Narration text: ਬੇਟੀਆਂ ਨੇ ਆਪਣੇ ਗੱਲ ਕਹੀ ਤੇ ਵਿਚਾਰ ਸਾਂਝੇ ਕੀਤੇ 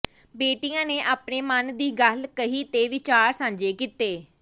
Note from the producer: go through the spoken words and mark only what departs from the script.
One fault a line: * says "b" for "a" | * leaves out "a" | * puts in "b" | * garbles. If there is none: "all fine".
* puts in "ਮਨ ਦੀ"